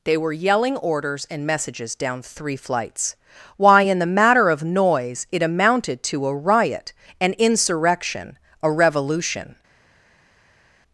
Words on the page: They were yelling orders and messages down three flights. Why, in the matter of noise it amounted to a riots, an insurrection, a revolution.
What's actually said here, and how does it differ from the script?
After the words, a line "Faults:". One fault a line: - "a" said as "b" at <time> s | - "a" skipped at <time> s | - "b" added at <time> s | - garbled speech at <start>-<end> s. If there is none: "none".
They were yelling orders and messages down three flights. Why, in the matter of noise it amounted to a riot, an insurrection, a revolution.
Faults:
- "riots" said as "riot" at 6.3 s